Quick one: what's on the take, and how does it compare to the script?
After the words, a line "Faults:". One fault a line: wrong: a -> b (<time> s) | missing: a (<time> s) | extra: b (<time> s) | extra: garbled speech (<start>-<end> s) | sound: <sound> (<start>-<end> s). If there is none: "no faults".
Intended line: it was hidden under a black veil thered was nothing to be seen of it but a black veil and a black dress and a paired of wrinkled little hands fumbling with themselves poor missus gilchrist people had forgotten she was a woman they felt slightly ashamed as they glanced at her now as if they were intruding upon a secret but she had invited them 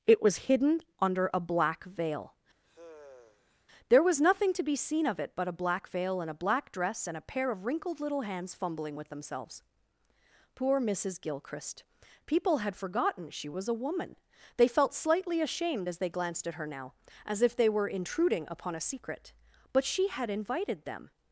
it was hidden under a black veil there was nothing to be seen of it but a black veil and a black dress and a pair of wrinkled little hands fumbling with themselves poor missus gilchrist people had forgotten she was a woman they felt slightly ashamed as they glanced at her now as if they were intruding upon a secret but she had invited them
Faults:
sound: sigh (2.6-3.7 s)
wrong: thered -> there (3.9 s)
wrong: paired -> pair (7.2 s)